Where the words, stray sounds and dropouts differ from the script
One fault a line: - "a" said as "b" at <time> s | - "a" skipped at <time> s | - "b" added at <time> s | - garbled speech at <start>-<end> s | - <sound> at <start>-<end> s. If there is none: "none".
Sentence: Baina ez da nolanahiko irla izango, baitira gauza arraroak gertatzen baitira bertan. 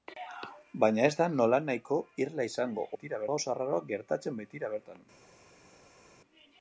none